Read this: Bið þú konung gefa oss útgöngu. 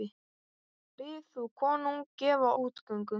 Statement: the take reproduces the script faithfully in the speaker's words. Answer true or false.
false